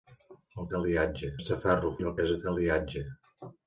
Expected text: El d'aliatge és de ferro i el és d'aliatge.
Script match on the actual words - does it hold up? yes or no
yes